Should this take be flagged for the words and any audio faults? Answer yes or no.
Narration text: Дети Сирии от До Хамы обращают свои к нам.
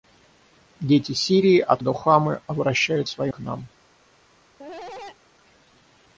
yes